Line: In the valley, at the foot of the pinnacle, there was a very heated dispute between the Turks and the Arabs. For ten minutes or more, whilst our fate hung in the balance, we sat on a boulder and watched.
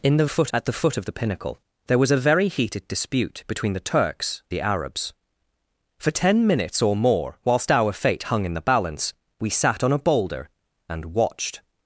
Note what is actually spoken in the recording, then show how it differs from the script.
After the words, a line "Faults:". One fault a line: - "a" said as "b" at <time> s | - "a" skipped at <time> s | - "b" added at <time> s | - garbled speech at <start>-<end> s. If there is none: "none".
In the foot, at the foot of the pinnacle, there was a very heated dispute between the Turks the Arabs. For ten minutes or more, whilst our fate hung in the balance, we sat on a boulder and watched.
Faults:
- "valley" said as "foot" at 0.3 s
- "and" skipped at 4.4 s